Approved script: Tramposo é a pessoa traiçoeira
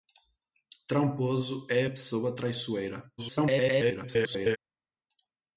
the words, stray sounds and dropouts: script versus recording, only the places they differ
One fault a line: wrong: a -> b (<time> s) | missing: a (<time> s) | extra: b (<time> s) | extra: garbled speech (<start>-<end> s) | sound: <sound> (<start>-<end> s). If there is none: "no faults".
extra: garbled speech (3.2-4.6 s)